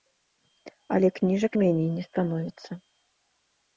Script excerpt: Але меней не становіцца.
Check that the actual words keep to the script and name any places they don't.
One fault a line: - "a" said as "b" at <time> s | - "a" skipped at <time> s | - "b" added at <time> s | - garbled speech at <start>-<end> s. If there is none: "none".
- "кніжак" added at 1.2 s